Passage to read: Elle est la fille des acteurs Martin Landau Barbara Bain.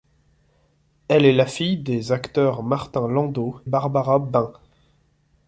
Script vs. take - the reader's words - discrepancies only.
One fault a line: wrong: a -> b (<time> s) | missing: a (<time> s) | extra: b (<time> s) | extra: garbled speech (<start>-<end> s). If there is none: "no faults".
no faults